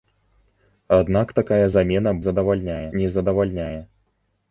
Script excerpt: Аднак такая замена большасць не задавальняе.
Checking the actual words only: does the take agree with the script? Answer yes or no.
no